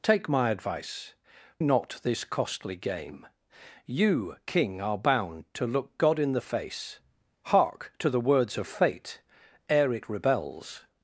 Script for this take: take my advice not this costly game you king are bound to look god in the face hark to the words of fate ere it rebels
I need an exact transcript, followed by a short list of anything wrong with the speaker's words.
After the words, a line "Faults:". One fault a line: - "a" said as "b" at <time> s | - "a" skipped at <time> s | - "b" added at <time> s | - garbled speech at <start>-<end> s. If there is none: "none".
take my advice not this costly game you king are bound to look god in the face hark to the words of fate ere it rebels
Faults:
none